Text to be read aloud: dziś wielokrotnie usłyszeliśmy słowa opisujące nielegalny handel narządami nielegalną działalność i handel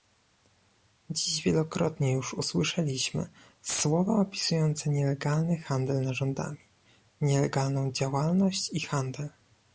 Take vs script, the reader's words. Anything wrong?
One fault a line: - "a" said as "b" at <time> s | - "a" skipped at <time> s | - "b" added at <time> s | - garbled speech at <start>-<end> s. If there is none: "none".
- "już" added at 2.1 s